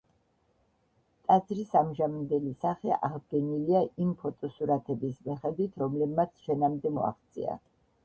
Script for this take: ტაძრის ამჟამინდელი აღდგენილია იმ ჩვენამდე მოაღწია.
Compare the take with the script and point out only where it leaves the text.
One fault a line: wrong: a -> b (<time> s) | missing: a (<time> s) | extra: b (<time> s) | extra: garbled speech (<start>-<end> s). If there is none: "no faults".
extra: სახე (2.6 s)
extra: ფოტოსურათების მიხედვით რომლებმაც (4.2 s)